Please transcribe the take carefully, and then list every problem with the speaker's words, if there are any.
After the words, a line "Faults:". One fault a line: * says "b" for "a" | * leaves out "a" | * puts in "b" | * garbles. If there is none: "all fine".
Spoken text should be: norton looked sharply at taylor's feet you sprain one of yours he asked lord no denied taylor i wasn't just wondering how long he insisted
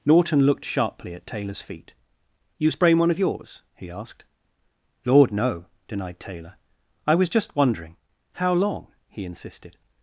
norton looked sharply at taylor's feet you sprain one of yours he asked lord no denied taylor i was just wondering how long he insisted
Faults:
* says "was" for "wasn't"